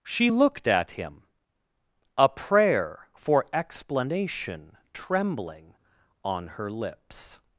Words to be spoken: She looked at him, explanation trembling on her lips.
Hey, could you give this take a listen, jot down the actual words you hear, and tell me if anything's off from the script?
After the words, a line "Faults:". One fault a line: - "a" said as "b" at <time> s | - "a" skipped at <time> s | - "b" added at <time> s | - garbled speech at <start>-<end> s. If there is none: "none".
She looked at him, a prayer for explanation trembling on her lips.
Faults:
- "a prayer for" added at 2.2 s